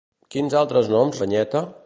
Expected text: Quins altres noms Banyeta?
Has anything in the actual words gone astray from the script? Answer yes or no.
no